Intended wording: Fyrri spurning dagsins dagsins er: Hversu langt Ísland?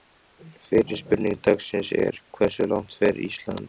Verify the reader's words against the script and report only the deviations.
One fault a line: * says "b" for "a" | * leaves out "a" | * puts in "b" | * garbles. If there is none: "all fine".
* leaves out "dagsins"
* puts in "fer"